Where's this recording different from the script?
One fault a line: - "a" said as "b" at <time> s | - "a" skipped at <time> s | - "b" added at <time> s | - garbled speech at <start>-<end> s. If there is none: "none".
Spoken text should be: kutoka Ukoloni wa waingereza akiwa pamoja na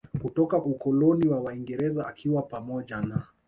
none